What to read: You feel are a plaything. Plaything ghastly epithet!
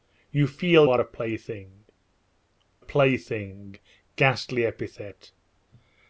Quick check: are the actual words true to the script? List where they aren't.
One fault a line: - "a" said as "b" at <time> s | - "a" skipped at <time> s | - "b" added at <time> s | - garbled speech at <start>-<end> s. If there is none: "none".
none